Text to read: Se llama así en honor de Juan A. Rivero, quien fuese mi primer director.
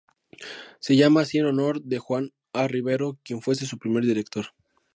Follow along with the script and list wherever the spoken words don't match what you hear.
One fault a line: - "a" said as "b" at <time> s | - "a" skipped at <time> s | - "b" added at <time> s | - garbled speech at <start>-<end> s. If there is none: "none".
- "mi" said as "su" at 3.7 s